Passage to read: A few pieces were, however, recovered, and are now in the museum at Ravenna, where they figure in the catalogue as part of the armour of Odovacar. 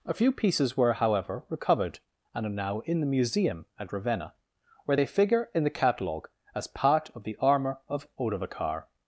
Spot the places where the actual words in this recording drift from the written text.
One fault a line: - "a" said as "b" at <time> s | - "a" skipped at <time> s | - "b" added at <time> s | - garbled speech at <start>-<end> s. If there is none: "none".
none